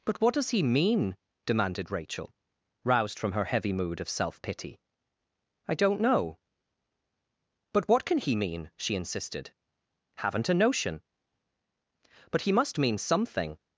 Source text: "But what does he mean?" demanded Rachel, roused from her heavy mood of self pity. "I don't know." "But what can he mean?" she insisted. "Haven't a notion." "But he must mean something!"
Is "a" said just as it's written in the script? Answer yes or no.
yes